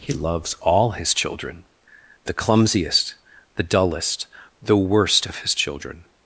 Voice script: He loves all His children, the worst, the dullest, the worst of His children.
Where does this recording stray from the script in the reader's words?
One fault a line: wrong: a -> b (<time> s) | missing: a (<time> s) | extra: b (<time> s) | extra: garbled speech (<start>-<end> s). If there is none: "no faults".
wrong: worst -> clumsiest (2.3 s)